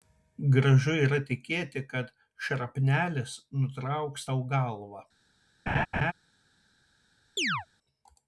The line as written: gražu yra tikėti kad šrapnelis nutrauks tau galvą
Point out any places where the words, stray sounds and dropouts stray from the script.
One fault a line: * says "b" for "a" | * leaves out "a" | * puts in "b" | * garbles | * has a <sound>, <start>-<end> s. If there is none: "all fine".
* has a laugh, 5.7-6.1 s
* has a chirp, 7.4-7.7 s